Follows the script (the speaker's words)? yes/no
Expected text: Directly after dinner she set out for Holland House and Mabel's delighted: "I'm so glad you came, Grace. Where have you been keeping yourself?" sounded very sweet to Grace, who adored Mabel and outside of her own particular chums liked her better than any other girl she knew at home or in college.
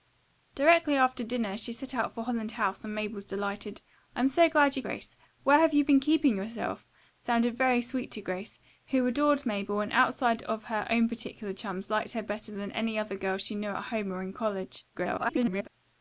no